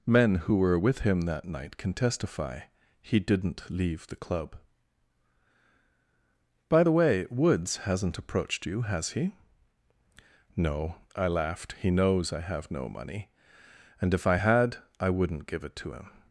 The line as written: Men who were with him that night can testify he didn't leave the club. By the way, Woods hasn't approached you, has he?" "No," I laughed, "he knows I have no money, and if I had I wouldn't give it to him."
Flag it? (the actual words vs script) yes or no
no